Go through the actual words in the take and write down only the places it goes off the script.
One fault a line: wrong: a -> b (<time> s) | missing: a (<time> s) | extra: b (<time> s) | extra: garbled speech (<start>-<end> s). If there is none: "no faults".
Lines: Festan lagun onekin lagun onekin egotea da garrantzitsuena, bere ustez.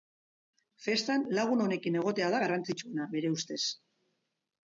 missing: lagun onekin (2.0 s)